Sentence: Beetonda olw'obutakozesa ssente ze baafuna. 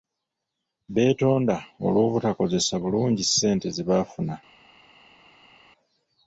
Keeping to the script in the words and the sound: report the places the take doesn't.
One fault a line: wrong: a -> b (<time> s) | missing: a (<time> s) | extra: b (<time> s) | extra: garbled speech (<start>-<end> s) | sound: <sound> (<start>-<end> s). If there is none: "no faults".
extra: bulungi (2.8 s)